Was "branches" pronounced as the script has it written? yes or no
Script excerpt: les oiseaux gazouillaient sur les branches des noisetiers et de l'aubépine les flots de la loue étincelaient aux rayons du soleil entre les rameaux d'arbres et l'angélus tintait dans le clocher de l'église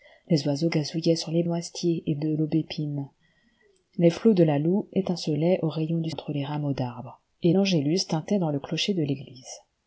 no